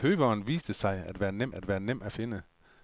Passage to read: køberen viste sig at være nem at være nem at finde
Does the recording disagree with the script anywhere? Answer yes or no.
no